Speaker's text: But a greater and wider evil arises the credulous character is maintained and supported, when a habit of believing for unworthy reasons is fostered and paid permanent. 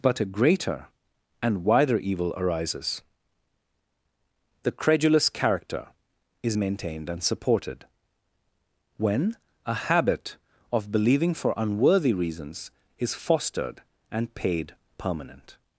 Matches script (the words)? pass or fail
pass